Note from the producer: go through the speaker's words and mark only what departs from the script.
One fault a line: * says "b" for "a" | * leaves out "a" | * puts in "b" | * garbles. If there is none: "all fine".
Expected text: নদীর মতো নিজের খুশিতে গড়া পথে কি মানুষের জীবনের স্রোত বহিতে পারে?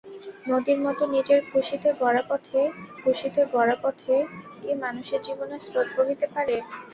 * puts in "খুশিতে গড়া পথে"